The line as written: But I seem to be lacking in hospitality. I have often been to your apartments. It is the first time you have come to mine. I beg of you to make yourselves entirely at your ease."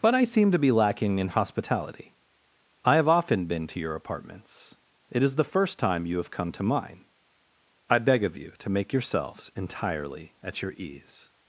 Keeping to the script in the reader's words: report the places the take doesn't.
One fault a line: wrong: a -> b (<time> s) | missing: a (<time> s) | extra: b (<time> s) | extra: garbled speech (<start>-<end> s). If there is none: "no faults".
no faults